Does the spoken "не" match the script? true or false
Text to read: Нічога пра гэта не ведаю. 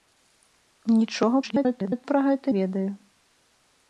false